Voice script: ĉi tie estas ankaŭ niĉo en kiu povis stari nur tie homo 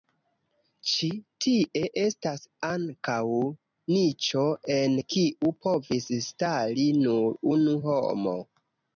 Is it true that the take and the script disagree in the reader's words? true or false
true